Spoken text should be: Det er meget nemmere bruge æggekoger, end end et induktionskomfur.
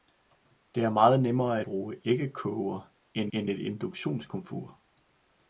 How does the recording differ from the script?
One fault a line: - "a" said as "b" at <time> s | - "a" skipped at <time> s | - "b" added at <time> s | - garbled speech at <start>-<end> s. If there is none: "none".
none